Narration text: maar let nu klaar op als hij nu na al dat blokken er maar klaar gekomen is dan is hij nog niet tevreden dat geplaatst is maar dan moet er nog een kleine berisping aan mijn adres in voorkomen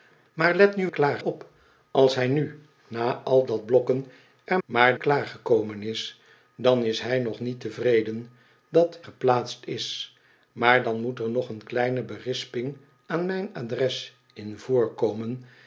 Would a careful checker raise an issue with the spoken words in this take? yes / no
no